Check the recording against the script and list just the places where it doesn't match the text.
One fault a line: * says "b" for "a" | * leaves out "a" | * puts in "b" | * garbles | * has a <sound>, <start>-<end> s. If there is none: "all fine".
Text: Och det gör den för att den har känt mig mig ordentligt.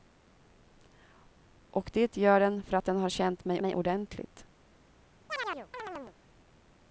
* has a chirp, 5.3-6.2 s